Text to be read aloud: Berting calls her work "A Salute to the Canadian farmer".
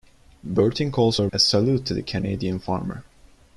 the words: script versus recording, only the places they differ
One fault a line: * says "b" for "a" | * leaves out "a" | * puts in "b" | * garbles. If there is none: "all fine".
* leaves out "work"